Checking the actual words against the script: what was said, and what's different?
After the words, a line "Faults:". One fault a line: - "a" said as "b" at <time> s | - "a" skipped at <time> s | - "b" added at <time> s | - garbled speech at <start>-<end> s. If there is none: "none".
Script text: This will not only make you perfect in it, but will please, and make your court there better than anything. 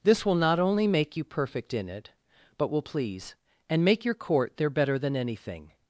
This will not only make you perfect in it, but will please, and make your court there better than anything.
Faults:
none